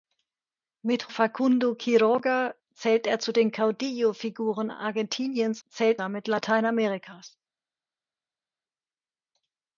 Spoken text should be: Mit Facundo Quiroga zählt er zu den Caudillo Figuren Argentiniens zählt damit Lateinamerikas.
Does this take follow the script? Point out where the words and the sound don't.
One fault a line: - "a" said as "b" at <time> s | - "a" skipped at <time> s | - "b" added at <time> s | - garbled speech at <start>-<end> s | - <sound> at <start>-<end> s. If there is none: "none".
none